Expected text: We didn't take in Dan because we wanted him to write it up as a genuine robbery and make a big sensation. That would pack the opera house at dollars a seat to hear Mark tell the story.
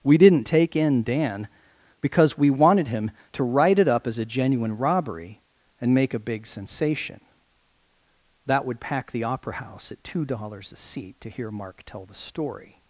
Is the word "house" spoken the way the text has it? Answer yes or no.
yes